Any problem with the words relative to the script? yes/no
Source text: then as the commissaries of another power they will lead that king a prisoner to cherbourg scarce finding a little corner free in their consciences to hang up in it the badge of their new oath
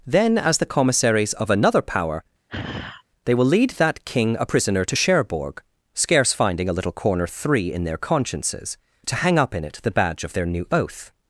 yes